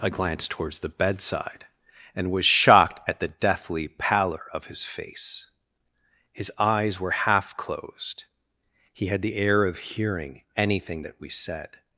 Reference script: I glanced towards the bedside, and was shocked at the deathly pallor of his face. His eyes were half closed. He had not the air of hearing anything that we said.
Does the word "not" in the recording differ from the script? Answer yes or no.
yes